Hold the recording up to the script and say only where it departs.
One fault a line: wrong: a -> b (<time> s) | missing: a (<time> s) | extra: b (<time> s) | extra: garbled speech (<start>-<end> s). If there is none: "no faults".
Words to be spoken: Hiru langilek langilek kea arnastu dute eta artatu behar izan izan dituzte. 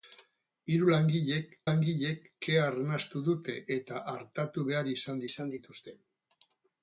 no faults